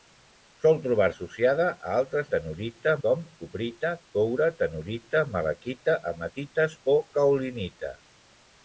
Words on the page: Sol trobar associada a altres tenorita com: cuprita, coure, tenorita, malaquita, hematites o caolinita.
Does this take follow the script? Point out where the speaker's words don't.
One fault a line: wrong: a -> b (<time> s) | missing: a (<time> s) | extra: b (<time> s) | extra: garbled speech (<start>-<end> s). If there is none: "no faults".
no faults